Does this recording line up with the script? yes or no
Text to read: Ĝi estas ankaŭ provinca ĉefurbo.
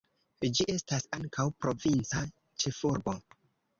yes